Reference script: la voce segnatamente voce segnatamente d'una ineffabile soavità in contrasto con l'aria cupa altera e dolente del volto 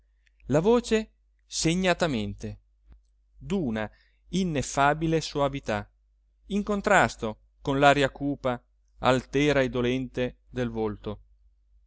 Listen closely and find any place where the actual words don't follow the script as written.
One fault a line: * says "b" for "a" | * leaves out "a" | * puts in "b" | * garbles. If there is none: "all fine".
* leaves out "voce segnatamente"